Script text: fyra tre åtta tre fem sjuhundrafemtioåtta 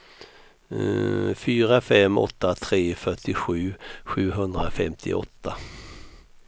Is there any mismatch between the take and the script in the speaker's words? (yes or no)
yes